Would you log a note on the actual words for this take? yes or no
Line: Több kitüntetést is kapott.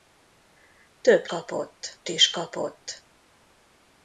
yes